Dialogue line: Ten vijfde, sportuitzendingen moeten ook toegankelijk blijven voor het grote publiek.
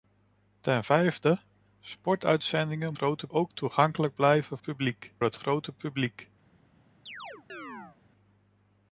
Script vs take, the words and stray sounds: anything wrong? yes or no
yes